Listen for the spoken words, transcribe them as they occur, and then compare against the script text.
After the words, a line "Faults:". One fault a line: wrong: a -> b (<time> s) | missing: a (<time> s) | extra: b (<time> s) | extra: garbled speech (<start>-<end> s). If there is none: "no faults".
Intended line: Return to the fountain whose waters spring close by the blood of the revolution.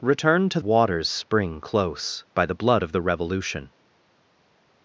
Return to waters spring close by the blood of the revolution.
Faults:
missing: the fountain whose (0.6 s)